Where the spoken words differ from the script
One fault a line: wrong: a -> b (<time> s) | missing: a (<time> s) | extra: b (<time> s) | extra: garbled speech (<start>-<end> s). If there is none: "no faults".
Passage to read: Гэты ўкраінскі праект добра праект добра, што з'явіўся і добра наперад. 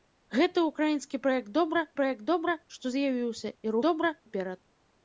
no faults